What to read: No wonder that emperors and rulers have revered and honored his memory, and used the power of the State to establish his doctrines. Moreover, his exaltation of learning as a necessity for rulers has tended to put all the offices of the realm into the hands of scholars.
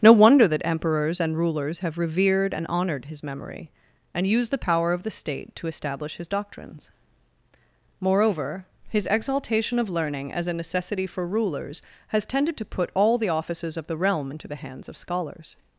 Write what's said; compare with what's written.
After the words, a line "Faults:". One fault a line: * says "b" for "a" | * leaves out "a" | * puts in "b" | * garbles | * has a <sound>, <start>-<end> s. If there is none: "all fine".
No wonder that emperors and rulers have revered and honored his memory, and used the power of the State to establish his doctrines. Moreover, his exaltation of learning as a necessity for rulers has tended to put all the offices of the realm into the hands of scholars.
Faults:
all fine